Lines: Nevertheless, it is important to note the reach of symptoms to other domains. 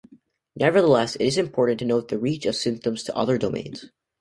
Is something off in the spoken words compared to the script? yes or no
no